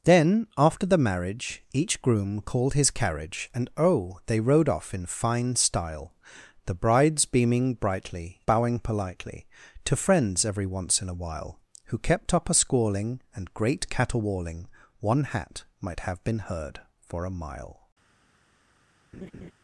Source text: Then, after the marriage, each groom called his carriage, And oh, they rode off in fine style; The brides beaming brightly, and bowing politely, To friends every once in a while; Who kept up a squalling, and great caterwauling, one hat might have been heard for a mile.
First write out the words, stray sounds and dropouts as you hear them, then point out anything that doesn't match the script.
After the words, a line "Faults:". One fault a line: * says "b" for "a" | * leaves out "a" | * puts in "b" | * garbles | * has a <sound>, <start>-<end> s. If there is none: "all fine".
Then, after the marriage, each groom called his carriage, And oh, they rode off in fine style; The brides beaming brightly, bowing politely, To friends every once in a while; Who kept up a squalling, and great caterwauling, one hat might have been heard for a mile.
Faults:
* leaves out "and"
* has a laugh, 19.1-19.5 s